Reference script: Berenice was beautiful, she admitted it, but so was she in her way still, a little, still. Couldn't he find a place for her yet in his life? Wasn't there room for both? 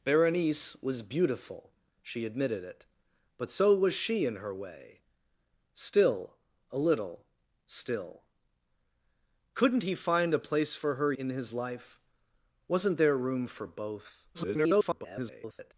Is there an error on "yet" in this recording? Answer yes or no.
yes